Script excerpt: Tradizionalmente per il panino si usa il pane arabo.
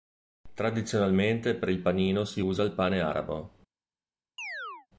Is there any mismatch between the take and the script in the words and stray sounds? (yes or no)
yes